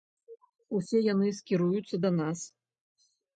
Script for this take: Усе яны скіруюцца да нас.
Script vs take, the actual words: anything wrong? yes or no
no